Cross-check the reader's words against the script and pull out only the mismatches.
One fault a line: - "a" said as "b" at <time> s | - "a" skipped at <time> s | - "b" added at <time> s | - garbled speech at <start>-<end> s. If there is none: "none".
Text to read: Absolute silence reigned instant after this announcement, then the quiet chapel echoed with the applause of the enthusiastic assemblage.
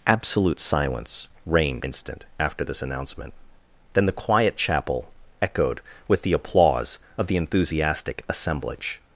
none